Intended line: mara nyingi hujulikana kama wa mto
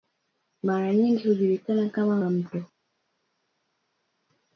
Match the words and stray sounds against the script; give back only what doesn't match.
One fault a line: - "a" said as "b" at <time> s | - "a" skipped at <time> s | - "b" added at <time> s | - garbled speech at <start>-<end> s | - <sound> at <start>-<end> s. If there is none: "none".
none